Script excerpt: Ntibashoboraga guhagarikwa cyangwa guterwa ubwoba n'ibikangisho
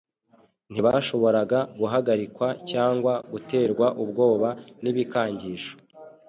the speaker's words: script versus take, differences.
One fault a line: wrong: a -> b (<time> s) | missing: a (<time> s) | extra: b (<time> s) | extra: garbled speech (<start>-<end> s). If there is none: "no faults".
no faults